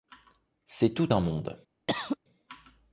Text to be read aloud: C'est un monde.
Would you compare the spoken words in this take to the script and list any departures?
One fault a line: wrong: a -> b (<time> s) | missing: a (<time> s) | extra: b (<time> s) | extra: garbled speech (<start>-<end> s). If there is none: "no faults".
extra: tout (0.9 s)